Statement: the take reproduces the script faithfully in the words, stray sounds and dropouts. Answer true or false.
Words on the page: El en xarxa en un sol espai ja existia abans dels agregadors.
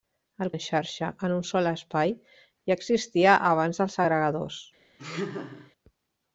false